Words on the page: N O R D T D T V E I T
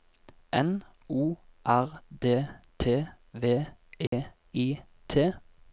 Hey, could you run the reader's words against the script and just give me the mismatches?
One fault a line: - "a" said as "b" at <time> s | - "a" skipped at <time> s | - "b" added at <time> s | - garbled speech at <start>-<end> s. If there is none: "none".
- "D T" skipped at 3.1 s